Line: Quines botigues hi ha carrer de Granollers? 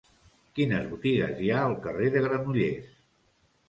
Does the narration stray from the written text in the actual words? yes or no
yes